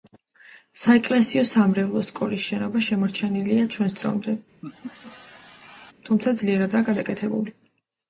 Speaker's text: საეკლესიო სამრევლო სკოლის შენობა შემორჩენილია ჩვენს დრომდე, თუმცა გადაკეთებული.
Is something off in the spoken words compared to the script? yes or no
yes